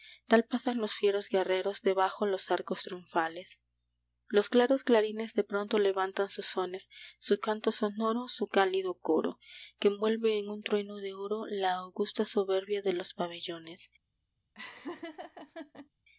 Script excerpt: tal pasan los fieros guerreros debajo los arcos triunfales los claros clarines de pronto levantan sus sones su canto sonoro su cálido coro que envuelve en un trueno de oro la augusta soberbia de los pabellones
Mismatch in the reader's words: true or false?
false